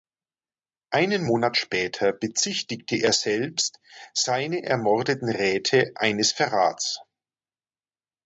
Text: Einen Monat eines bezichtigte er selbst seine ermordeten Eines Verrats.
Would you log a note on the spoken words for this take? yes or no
yes